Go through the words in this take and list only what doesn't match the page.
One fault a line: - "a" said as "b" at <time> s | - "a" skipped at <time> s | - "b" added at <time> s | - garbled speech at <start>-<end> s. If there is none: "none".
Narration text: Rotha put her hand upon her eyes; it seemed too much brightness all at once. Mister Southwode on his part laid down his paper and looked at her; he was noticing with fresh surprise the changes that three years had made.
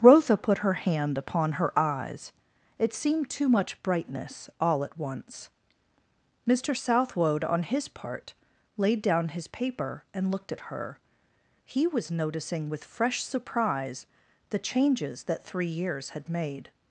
none